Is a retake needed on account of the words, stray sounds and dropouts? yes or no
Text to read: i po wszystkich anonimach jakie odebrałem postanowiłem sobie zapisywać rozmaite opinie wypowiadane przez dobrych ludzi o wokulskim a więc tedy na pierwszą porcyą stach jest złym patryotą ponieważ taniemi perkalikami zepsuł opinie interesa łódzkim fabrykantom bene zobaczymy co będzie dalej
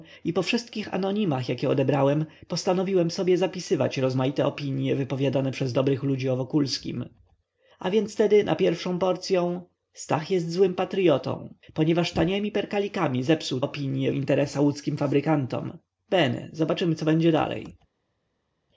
no